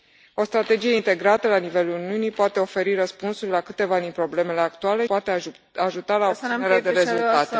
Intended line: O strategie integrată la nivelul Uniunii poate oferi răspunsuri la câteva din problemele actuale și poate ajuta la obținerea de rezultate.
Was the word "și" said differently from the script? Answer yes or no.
yes